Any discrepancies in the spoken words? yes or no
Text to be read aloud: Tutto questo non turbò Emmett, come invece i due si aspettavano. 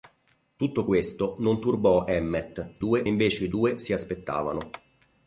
yes